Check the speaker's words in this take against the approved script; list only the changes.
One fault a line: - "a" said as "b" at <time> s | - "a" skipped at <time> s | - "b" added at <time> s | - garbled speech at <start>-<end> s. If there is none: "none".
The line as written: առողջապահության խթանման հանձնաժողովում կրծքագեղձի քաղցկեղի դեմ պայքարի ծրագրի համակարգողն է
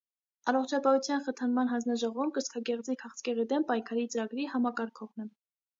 none